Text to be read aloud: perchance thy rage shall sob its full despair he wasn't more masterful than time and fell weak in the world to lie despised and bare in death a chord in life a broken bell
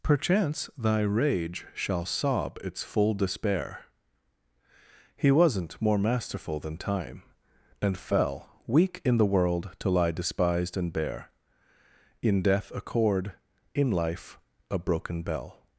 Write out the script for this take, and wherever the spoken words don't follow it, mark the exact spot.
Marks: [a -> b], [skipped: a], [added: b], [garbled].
perchance thy rage shall sob its full despair he wasn't more masterful than time and fell weak in the world to lie despised and bare in death a chord in life a broken bell